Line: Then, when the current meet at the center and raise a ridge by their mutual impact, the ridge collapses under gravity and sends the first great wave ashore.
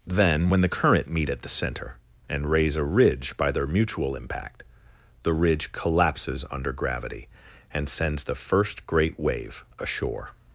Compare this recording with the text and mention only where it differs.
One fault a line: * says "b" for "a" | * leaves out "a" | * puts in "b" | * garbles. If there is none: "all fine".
all fine